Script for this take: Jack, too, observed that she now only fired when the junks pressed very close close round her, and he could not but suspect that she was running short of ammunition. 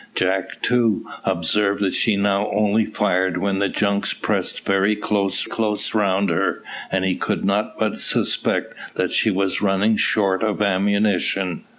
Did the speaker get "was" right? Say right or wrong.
right